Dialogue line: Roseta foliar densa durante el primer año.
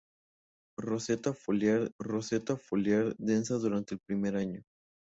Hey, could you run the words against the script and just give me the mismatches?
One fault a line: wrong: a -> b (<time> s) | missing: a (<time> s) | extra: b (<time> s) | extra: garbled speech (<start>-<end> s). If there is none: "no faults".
extra: roseta foliar (2.0 s)